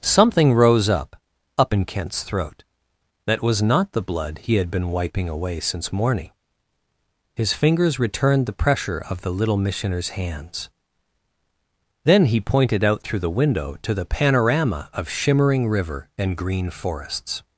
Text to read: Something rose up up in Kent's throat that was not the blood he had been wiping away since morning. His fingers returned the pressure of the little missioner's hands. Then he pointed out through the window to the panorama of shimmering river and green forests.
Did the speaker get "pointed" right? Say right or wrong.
right